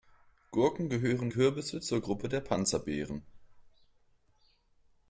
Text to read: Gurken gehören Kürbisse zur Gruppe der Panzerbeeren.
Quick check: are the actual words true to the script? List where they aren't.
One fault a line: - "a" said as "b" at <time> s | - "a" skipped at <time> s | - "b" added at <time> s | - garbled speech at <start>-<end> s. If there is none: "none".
none